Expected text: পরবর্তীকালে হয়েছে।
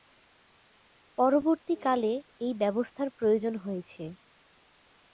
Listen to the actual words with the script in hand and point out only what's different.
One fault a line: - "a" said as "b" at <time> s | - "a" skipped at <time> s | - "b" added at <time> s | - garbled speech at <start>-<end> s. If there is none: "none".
- "এই ব্যবস্থার প্রয়োজন" added at 2.4 s